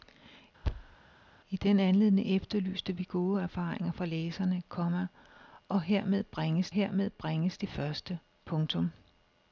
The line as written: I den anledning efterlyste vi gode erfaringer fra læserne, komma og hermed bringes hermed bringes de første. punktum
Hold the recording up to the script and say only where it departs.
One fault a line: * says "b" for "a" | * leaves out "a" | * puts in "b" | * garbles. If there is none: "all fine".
all fine